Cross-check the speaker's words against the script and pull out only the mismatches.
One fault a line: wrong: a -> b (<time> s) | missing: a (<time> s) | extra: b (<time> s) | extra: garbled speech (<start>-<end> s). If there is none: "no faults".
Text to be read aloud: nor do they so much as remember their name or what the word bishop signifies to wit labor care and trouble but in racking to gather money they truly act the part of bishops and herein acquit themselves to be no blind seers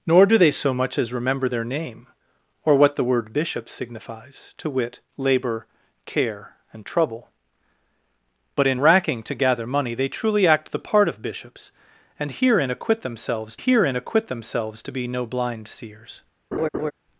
extra: herein acquit themselves (13.6 s)